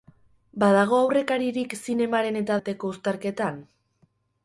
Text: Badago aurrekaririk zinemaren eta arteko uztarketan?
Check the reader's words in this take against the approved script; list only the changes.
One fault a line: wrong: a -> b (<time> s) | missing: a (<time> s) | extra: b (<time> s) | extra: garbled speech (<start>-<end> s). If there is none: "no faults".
no faults